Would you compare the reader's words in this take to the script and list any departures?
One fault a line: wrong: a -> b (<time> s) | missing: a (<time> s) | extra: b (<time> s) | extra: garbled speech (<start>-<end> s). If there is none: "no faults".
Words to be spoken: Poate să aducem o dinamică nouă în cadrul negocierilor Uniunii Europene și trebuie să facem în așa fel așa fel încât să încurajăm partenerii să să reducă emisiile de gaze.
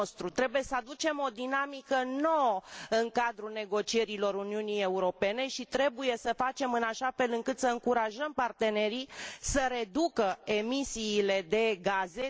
wrong: Poate -> Trebuie (0.3 s)
missing: așa fel (7.3 s)
missing: să (9.7 s)